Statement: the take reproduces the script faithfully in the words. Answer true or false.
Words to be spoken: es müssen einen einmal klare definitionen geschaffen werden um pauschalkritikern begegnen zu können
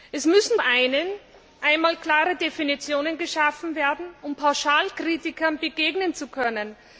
true